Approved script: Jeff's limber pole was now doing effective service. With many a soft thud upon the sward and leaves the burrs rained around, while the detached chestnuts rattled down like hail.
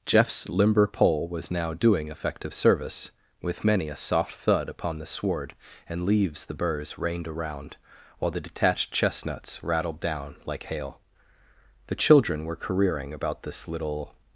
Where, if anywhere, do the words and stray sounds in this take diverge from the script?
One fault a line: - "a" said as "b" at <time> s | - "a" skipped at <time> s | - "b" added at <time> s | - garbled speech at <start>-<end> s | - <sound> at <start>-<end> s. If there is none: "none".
- "The children were careering about this little" added at 11.9 s